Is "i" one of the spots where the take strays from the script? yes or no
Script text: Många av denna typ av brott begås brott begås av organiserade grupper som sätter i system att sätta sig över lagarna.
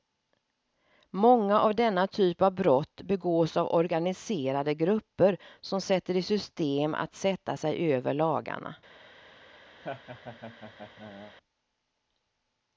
no